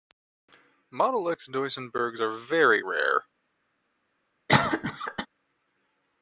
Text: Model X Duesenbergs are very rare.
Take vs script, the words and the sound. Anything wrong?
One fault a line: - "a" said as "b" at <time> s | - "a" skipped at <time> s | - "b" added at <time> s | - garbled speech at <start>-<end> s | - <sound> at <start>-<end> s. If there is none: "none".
- cough at 4.5-5.3 s